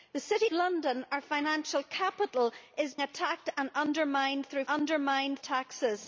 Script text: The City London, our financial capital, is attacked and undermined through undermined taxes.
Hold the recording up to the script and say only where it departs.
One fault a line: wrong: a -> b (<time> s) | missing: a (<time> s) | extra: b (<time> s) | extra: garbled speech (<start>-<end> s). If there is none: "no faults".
no faults